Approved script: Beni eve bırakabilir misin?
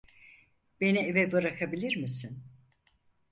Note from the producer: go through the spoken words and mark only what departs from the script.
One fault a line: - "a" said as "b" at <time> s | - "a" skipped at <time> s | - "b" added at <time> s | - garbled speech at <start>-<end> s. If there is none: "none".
none